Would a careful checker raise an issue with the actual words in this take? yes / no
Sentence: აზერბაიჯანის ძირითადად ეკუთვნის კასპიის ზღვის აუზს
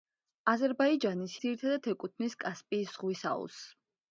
no